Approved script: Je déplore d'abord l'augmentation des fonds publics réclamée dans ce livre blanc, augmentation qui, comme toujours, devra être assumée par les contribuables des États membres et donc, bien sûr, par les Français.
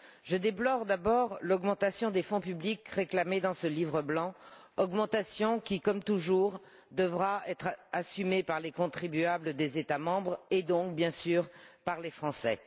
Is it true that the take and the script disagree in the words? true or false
false